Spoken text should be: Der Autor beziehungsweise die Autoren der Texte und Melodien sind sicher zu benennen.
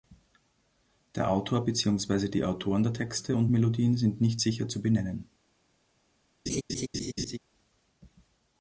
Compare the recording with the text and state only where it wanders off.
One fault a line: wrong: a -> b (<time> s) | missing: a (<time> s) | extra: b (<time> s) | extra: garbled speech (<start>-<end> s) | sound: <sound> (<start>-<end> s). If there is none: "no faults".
extra: nicht (4.2 s)
sound: laugh (6.5-7.4 s)